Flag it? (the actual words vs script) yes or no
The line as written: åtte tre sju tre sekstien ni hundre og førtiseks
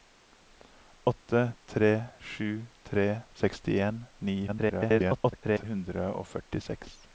yes